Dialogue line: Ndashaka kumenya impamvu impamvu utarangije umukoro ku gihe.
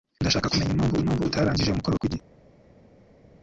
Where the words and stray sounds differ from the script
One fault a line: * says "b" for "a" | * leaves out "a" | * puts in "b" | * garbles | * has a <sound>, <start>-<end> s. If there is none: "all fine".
all fine